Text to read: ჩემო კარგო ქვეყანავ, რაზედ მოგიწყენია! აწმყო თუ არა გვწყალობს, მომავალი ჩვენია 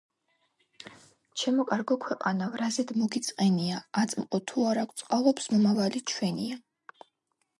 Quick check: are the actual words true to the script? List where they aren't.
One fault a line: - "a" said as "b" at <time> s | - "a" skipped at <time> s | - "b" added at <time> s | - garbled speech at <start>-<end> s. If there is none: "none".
none